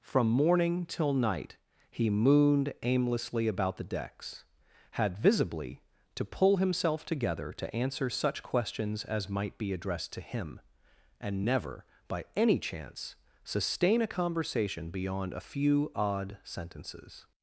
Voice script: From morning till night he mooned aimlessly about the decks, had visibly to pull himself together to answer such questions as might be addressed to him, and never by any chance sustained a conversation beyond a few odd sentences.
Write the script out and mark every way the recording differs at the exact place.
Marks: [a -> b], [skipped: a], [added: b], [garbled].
From morning till night he mooned aimlessly about the decks, had visibly to pull himself together to answer such questions as might be addressed to him, and never by any chance [sustained -> sustain] a conversation beyond a few odd sentences.